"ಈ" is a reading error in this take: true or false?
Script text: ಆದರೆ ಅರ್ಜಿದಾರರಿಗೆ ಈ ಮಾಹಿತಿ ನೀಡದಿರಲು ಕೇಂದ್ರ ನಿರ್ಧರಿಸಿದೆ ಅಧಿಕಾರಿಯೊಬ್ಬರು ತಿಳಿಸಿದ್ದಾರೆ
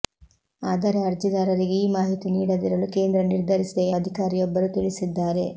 false